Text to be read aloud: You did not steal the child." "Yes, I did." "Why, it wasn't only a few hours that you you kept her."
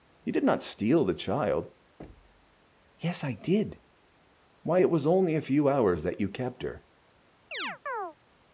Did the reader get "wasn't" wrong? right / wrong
wrong